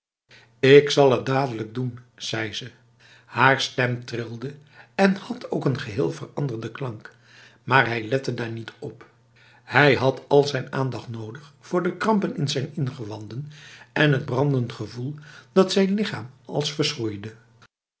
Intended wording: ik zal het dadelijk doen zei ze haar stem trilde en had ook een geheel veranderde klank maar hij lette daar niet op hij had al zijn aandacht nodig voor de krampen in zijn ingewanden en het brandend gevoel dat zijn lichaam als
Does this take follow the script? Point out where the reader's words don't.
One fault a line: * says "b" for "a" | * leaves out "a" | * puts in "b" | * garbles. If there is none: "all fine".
all fine